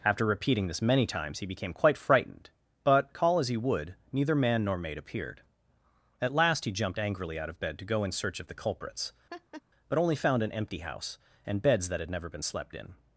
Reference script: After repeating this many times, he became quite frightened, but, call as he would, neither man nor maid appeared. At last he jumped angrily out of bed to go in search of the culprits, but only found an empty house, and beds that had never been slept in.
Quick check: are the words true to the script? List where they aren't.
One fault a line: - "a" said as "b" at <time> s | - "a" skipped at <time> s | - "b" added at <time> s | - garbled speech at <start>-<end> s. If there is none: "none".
none